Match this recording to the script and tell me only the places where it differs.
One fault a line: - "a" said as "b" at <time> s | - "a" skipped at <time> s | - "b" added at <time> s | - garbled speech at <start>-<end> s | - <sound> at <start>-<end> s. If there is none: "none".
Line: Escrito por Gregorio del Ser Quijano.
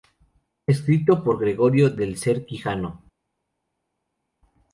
none